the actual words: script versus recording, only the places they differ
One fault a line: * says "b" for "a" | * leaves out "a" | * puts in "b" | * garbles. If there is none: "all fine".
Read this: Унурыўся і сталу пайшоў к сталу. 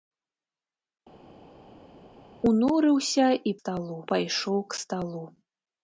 all fine